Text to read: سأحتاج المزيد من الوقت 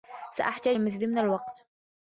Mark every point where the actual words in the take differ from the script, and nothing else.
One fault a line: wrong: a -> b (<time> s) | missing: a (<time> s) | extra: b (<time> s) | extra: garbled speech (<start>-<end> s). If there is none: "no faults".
no faults